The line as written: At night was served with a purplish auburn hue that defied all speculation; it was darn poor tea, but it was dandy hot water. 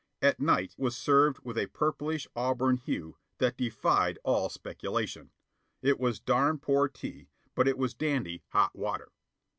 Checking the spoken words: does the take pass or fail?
pass